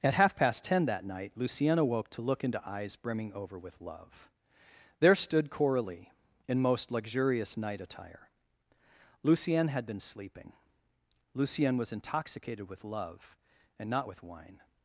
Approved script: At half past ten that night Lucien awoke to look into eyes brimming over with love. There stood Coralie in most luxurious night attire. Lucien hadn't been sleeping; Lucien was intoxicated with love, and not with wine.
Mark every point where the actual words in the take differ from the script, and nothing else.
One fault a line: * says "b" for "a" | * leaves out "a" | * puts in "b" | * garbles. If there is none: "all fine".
* says "had" for "hadn't"